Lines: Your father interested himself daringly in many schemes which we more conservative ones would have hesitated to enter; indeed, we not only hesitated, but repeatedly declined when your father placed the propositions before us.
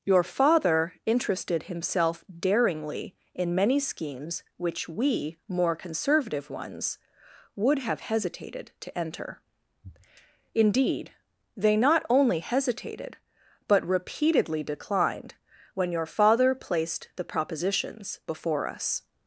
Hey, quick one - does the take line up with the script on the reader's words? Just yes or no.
no